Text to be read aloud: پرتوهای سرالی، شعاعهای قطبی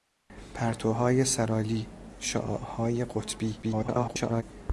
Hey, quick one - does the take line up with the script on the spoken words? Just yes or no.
no